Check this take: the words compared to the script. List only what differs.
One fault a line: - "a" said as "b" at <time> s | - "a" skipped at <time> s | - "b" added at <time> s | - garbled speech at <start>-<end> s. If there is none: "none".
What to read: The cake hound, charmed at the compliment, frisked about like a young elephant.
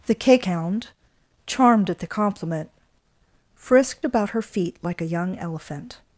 - "her feet" added at 4.3 s